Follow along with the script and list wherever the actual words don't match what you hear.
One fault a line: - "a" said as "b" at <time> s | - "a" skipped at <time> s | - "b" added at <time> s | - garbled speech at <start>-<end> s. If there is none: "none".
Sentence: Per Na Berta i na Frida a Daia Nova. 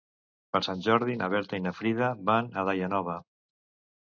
- "Sant Jordi" added at 0.7 s
- "van" added at 2.3 s